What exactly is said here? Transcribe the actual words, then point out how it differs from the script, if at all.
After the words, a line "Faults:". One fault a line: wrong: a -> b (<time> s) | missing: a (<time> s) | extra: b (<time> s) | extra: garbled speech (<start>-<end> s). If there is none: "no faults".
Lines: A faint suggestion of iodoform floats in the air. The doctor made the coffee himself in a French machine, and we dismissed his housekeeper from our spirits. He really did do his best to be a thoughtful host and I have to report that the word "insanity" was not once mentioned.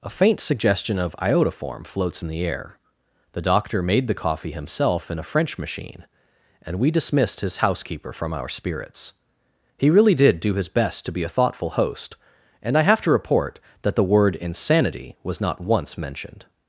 A faint suggestion of iodoform floats in the air. The doctor made the coffee himself in a French machine, and we dismissed his housekeeper from our spirits. He really did do his best to be a thoughtful host and I have to report that the word "insanity" was not once mentioned.
Faults:
no faults